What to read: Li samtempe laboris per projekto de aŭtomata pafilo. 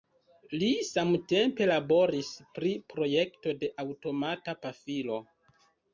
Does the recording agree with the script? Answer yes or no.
no